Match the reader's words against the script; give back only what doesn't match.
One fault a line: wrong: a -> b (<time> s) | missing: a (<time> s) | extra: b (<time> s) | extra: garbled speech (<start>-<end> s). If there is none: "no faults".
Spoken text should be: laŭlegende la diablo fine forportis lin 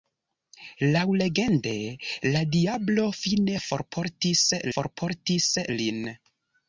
extra: forportis (4.7 s)